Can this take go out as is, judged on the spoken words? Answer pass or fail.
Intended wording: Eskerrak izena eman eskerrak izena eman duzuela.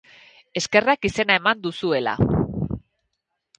fail